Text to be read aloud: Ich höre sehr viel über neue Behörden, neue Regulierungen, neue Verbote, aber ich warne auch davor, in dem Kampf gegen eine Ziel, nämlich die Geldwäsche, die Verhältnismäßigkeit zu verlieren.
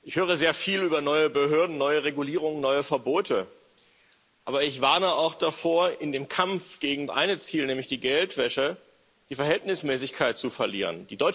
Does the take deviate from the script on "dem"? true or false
false